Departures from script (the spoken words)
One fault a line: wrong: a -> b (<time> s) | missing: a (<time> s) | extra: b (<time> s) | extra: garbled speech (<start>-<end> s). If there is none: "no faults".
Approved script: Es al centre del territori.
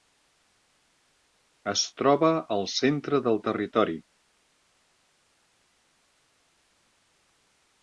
extra: troba (2.0 s)